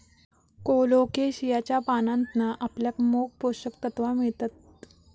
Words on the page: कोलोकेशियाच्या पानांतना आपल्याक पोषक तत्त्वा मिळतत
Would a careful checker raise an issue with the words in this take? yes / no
yes